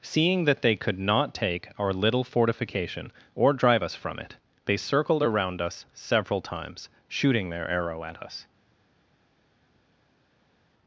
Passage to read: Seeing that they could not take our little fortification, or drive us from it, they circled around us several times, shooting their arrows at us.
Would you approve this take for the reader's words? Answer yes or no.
no